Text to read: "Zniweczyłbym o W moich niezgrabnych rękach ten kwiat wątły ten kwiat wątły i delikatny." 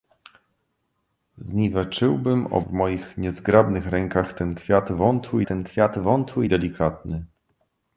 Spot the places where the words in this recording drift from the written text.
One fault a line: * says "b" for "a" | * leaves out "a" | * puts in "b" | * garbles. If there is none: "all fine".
all fine